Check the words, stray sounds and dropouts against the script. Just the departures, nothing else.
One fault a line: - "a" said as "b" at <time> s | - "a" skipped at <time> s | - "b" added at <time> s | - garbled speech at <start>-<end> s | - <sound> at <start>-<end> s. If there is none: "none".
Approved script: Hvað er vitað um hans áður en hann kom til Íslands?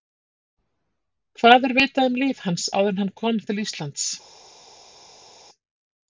- "líf" added at 2.2 s